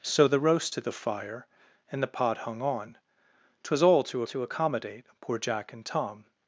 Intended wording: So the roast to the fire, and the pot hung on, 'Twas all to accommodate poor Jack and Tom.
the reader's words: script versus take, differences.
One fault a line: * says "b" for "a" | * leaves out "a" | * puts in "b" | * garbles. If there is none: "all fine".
* puts in "to"